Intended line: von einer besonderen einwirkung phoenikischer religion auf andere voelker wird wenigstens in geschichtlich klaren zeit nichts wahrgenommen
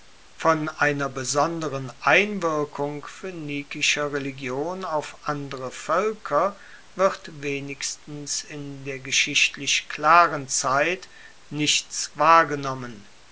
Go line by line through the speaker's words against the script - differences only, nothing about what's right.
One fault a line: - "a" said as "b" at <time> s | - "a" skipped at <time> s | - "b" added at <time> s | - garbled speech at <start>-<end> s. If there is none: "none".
- "der" added at 8.8 s